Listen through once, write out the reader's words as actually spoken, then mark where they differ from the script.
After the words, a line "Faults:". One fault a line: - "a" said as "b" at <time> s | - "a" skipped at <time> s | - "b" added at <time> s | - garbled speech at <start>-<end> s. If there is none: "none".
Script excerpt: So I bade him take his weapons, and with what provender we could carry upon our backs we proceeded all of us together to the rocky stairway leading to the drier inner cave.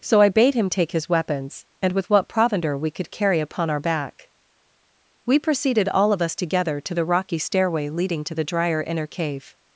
So I bade him take his weapons, and with what provender we could carry upon our back we proceeded all of us together to the rocky stairway leading to the drier inner cave.
Faults:
- "backs" said as "back" at 3.8 s